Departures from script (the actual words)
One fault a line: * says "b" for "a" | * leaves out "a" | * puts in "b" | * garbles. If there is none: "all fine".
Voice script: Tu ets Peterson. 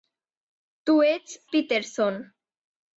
all fine